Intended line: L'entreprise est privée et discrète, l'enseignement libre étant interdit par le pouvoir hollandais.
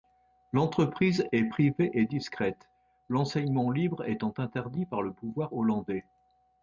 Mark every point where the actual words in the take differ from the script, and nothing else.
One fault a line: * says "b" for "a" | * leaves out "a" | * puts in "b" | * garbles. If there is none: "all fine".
all fine